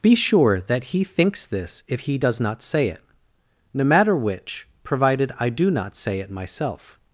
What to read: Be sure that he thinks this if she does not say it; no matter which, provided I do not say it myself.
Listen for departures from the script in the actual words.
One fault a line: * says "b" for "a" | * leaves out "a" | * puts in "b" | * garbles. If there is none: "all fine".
* says "he" for "she"